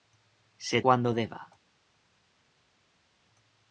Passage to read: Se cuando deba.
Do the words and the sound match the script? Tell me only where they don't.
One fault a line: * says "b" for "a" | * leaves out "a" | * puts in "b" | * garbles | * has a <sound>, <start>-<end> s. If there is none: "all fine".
all fine